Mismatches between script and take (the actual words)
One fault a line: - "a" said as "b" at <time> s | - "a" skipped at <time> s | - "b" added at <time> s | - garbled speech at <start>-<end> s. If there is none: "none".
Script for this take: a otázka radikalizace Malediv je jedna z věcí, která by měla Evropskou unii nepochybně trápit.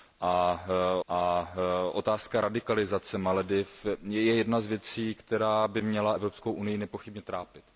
- "a" added at 1.1 s